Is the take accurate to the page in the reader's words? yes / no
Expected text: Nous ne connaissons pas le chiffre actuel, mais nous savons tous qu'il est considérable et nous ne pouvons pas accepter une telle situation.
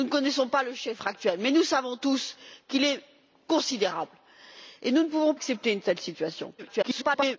no